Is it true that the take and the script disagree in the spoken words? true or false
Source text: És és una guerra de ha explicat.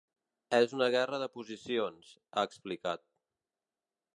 true